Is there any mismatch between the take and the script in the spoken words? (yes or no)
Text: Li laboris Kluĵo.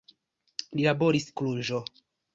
no